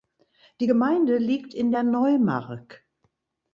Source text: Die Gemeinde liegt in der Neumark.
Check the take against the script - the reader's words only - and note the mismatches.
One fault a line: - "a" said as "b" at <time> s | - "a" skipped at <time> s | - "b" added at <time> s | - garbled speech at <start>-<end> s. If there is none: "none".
none